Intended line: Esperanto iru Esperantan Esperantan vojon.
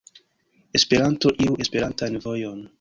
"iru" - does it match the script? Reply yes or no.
yes